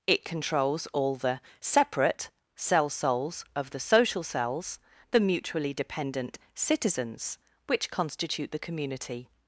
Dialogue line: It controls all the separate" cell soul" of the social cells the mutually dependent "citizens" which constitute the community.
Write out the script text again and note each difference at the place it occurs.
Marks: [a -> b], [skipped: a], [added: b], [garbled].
It controls all the separate" cell [soul" -> souls] of the social cells the mutually dependent "citizens" which constitute the community.